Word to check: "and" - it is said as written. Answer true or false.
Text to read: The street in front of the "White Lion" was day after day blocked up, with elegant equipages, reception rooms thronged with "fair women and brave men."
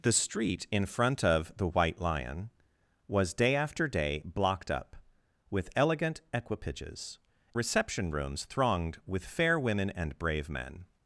true